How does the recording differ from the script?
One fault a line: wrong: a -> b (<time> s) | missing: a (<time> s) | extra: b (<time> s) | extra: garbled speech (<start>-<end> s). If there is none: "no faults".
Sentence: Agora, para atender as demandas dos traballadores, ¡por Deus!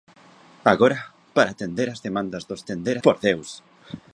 wrong: traballadores -> atender (2.6 s)